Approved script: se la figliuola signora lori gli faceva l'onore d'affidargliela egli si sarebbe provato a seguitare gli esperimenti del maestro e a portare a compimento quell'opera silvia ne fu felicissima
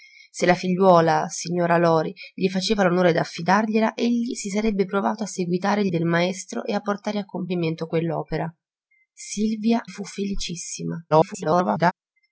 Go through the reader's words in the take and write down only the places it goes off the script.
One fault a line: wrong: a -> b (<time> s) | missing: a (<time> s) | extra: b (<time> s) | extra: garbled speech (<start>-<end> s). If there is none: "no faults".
missing: esperimenti (5.9 s)
missing: ne (9.8 s)
extra: garbled speech (11.1-11.9 s)